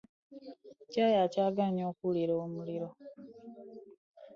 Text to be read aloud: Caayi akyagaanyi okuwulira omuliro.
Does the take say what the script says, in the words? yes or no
yes